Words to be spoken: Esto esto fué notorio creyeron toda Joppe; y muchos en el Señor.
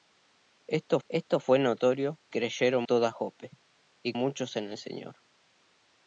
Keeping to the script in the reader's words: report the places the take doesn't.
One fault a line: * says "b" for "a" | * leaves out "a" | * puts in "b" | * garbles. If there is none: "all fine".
all fine